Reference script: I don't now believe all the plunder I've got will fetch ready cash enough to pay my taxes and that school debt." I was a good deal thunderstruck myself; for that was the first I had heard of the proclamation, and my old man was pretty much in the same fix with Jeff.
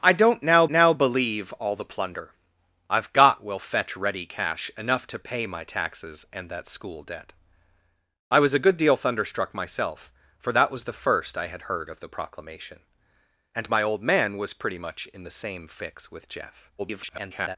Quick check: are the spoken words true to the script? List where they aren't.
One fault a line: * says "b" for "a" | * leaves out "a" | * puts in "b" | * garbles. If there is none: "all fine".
* puts in "now"
* garbles